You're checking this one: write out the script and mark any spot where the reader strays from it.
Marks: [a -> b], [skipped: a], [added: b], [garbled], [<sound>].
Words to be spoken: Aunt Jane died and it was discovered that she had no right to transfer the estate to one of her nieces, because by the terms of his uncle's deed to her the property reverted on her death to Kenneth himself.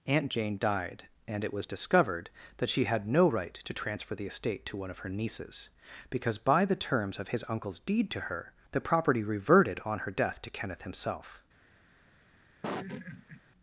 Aunt Jane died and it was discovered that she had no right to transfer the estate to one of her nieces, because by the terms of his uncle's deed to her the property reverted on her death to Kenneth himself. [laugh]